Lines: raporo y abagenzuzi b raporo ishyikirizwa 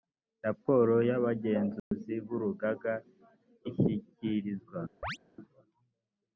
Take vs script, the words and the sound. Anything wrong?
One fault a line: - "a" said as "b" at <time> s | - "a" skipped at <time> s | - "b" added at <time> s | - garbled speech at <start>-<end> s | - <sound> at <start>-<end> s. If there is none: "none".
- dropout at 1.8-1.9 s
- "raporo" said as "urugaga" at 2.4 s
- chirp at 5.0-5.2 s